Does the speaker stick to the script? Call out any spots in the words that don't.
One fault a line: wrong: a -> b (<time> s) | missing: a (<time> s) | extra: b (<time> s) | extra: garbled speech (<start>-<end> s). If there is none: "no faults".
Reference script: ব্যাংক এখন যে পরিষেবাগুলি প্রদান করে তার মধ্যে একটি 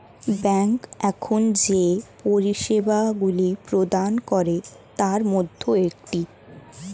no faults